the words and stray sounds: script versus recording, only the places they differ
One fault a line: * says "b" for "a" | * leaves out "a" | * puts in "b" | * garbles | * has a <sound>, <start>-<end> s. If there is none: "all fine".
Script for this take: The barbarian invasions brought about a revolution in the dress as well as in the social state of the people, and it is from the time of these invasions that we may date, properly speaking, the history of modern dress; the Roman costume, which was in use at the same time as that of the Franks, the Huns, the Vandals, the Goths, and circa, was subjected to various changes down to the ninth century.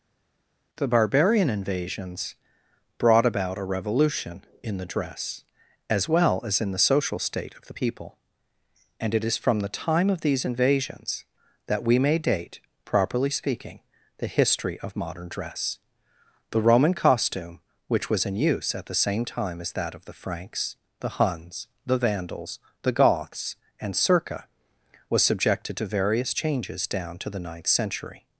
all fine